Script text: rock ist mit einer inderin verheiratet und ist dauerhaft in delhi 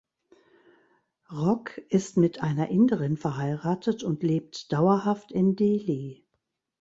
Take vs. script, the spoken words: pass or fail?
fail